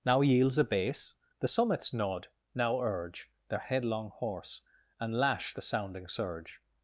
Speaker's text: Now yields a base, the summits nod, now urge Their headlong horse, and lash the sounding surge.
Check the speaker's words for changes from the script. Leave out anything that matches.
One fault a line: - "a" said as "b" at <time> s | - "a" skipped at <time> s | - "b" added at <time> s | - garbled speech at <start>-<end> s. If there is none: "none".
none